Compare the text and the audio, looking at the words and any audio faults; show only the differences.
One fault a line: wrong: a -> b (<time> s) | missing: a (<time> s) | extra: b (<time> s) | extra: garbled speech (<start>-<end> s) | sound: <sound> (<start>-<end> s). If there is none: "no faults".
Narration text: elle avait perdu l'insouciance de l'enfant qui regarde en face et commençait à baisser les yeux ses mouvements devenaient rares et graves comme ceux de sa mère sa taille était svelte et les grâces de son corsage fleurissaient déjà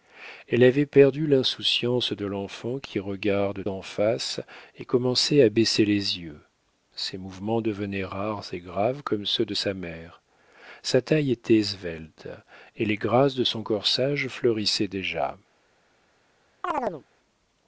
sound: chirp (16.6-17.0 s)